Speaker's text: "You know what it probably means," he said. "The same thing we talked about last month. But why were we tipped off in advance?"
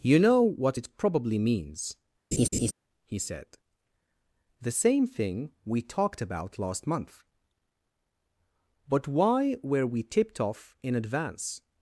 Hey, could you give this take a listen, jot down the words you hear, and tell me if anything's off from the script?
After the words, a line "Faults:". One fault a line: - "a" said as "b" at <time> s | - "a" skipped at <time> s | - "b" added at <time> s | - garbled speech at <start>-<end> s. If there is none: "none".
"You know what it probably means," he said. "The same thing we talked about last month. But why were we tipped off in advance?"
Faults:
none